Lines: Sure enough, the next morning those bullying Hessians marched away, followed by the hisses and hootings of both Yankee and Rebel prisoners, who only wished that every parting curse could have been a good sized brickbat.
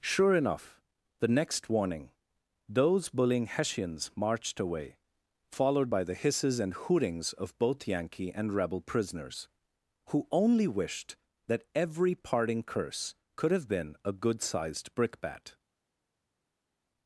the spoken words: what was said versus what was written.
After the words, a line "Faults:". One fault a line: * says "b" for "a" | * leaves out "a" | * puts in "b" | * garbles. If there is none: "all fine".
Sure enough, the next warning those bullying Hessians marched away, followed by the hisses and hootings of both Yankee and Rebel prisoners, who only wished that every parting curse could have been a good sized brickbat.
Faults:
* says "warning" for "morning"